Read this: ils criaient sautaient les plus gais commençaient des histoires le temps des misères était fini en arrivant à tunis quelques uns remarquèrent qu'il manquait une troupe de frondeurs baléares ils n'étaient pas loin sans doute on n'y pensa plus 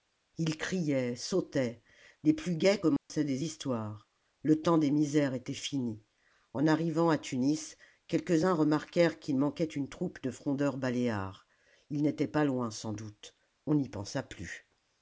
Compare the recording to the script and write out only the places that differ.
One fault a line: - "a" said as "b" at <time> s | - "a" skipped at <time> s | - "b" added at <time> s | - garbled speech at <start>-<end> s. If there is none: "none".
none